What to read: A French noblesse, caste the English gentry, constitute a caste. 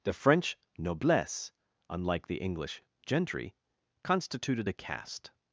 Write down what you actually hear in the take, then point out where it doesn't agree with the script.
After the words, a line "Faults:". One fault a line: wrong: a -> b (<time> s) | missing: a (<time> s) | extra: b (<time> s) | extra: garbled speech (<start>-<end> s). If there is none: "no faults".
The French noblesse, unlike the English gentry, constituted a caste.
Faults:
wrong: A -> The (0.0 s)
wrong: caste -> unlike (1.9 s)
wrong: constitute -> constituted (4.0 s)